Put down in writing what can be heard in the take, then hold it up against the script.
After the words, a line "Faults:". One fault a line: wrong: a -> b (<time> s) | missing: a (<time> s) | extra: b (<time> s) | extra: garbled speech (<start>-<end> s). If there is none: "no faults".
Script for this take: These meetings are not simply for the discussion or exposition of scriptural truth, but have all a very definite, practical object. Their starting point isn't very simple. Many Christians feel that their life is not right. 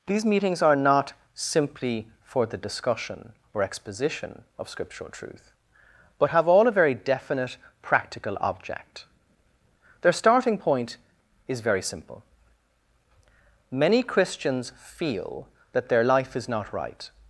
These meetings are not simply for the discussion or exposition of scriptural truth, but have all a very definite, practical object. Their starting point is very simple. Many Christians feel that their life is not right.
Faults:
wrong: isn't -> is (11.5 s)